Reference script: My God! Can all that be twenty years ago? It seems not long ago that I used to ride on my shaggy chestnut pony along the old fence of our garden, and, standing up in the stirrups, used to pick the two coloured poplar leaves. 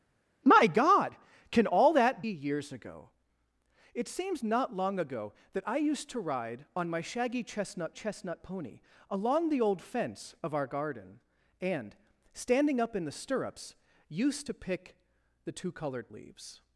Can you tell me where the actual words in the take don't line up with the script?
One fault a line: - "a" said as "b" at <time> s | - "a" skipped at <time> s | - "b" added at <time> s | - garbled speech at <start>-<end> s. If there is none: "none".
- "be twenty" skipped at 2.2 s
- "chestnut" added at 7.9 s
- "poplar" skipped at 16.1 s